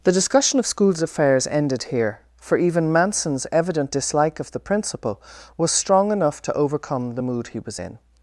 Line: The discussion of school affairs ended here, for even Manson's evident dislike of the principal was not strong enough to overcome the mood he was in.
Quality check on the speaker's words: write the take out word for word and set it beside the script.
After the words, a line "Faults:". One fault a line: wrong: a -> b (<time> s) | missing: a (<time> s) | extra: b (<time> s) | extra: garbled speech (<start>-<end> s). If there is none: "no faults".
The discussion of schools affairs ended here, for even Manson's evident dislike of the principal was strong enough to overcome the mood he was in.
Faults:
wrong: school -> schools (0.7 s)
missing: not (5.7 s)